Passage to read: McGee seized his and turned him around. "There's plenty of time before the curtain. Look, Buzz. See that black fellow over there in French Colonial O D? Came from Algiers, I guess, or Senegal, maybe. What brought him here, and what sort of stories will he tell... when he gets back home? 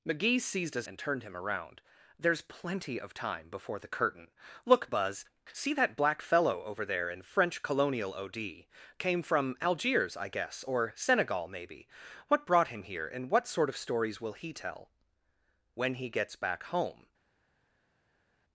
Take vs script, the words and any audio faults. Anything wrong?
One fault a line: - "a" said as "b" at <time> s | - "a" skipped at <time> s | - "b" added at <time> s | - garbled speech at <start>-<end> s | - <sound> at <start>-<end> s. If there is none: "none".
none